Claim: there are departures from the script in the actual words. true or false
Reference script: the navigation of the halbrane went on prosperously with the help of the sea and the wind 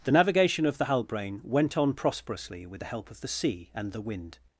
false